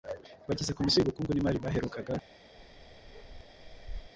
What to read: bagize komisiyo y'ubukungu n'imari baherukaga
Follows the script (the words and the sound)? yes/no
no